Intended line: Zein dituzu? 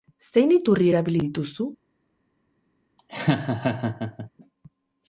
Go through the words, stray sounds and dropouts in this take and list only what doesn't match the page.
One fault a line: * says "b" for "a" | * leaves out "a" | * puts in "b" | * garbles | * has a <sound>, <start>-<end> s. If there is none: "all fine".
* puts in "iturri erabili"
* has a laugh, 3.0-4.3 s